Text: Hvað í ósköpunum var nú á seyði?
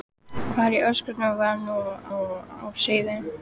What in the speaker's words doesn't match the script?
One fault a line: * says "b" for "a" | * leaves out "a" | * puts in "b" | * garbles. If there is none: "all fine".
* puts in "nú"